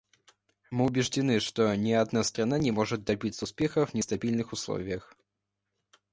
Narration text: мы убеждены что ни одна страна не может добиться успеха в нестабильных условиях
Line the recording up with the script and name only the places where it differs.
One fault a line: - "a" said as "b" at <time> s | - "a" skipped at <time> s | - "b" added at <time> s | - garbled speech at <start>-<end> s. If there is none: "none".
none